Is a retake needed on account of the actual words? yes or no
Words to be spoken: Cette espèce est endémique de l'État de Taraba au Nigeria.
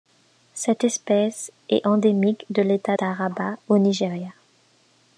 yes